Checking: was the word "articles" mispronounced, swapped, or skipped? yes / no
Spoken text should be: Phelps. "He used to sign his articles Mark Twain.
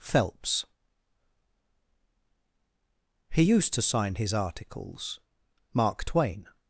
no